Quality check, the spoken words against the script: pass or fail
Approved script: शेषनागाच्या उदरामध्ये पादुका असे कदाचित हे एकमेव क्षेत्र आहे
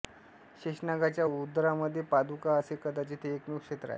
pass